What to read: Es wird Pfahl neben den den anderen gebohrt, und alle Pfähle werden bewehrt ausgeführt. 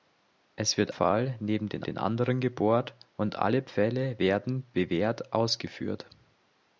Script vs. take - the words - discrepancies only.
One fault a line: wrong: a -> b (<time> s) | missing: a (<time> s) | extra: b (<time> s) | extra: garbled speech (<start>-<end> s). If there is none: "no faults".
no faults